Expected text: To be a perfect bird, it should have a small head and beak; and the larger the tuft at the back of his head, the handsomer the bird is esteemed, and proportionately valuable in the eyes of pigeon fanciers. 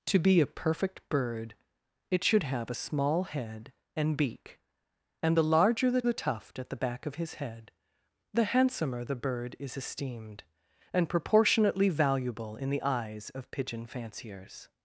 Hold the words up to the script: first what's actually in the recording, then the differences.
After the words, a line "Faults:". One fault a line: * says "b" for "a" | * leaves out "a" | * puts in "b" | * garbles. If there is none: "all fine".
To be a perfect bird, it should have a small head and beak; and the larger the the tuft at the back of his head, the handsomer the bird is esteemed, and proportionately valuable in the eyes of pigeon fanciers.
Faults:
* puts in "the"